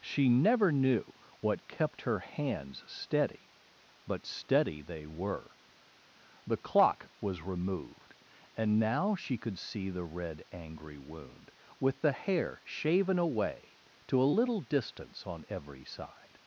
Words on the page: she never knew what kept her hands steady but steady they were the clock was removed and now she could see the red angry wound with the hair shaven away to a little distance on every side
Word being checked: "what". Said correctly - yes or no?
yes